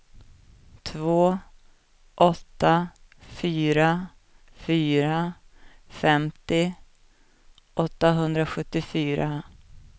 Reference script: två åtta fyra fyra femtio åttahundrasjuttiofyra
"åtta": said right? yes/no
yes